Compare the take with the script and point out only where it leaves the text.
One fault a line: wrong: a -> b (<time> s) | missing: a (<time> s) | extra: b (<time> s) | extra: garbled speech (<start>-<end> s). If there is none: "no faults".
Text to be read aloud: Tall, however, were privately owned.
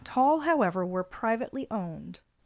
no faults